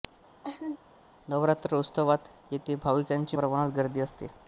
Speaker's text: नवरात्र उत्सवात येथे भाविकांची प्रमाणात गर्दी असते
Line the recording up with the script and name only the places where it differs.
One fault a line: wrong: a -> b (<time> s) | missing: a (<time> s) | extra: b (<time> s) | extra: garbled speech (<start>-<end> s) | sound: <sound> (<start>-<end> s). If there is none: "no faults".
sound: laugh (0.4-0.8 s)